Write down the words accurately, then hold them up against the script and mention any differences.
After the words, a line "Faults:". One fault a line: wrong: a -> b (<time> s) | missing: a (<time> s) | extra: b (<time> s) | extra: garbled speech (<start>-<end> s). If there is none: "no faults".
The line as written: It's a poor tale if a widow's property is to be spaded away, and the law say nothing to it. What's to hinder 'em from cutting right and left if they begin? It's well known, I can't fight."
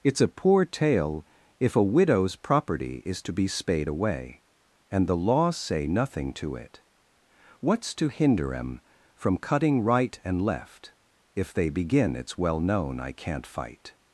It's a poor tale if a widow's property is to be spade away, and the law say nothing to it. What's to hinder 'em from cutting right and left if they begin? It's well known, I can't fight."
Faults:
wrong: spaded -> spade (3.5 s)